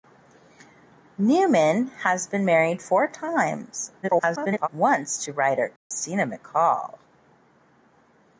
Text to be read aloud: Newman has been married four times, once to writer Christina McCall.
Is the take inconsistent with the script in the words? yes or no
yes